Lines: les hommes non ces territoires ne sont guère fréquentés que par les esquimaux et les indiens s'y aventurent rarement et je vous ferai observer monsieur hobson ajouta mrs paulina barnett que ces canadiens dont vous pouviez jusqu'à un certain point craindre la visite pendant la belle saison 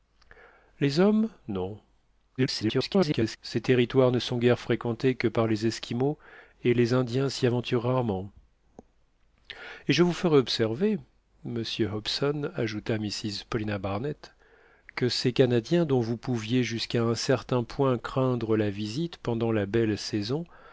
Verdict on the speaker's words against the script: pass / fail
fail